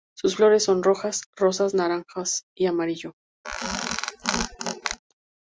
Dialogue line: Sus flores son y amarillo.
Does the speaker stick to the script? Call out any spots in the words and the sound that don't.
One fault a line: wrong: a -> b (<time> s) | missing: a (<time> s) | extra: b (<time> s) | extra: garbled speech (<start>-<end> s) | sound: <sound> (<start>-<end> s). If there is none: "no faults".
extra: rojas rosas naranjas (0.8 s)
sound: squeak (3.4-5.0 s)